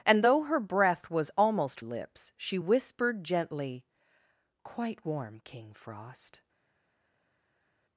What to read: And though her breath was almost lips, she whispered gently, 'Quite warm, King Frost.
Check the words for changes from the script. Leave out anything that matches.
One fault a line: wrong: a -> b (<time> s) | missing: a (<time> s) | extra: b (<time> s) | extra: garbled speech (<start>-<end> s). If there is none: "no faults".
no faults